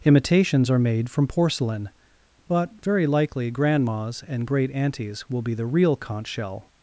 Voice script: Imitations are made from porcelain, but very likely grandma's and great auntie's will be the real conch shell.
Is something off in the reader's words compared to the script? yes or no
no